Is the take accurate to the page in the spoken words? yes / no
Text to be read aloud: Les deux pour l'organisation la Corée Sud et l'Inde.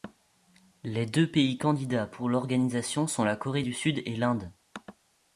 no